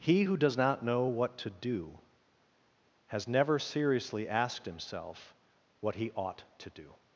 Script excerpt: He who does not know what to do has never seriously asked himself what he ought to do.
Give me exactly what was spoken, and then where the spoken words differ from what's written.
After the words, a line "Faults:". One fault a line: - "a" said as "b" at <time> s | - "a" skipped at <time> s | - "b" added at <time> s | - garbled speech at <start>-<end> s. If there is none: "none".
He who does not know what to do has never seriously asked himself what he ought to do.
Faults:
none